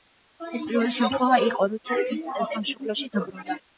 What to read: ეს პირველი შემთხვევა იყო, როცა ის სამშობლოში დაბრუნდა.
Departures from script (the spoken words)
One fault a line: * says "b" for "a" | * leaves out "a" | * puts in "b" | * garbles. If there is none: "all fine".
all fine